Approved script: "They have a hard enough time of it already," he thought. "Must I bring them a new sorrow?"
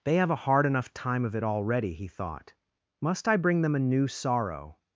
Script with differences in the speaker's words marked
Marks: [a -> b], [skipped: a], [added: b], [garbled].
"They have a hard enough time of it already," he thought. "Must I bring them a new sorrow?"